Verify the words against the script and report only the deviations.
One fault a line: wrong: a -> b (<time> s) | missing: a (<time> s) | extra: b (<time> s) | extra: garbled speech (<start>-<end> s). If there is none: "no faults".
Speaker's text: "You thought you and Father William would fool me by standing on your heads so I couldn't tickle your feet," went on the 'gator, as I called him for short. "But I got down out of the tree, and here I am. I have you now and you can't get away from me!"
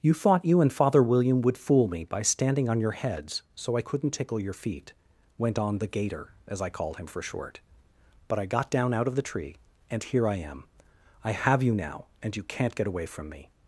no faults